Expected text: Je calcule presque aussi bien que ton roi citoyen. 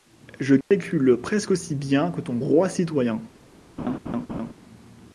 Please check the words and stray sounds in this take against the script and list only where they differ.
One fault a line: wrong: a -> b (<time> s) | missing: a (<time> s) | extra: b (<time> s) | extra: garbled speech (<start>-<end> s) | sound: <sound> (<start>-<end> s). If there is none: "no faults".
sound: dropout (0.6-0.7 s)
sound: laugh (3.8-4.5 s)